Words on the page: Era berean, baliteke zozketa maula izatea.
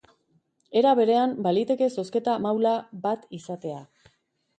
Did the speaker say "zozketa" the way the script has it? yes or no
yes